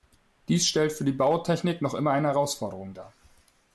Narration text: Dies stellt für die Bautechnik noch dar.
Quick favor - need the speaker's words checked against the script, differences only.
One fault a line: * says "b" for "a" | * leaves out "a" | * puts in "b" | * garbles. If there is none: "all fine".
* puts in "immer eine Herausforderung"